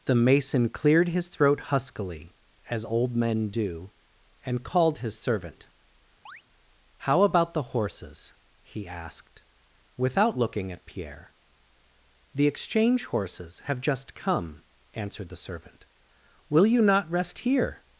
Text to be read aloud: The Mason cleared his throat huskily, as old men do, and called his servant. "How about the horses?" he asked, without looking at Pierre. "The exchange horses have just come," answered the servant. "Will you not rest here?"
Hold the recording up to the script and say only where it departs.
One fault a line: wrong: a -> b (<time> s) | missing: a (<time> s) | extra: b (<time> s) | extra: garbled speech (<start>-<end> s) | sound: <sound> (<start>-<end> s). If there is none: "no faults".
sound: chirp (6.3-6.4 s)